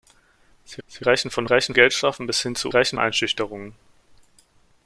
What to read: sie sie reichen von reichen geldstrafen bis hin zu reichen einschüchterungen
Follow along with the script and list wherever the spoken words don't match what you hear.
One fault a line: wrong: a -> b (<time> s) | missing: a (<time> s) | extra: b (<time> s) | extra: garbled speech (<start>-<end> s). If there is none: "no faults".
no faults